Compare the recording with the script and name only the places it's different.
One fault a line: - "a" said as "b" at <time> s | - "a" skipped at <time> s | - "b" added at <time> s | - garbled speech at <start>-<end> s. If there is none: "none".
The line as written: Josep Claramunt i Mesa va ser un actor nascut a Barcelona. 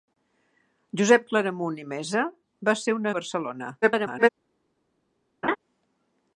- "actor nascut" skipped at 3.1 s
- garbled speech at 3.8-4.3 s